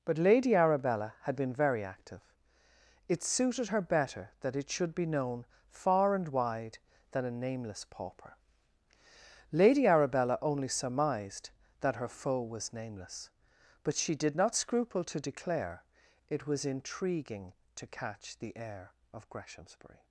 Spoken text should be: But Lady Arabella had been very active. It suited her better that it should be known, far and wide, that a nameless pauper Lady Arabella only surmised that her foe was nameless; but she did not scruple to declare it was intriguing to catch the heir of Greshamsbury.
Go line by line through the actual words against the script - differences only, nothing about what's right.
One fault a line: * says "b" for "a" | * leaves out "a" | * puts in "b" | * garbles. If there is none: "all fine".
* says "than" for "that"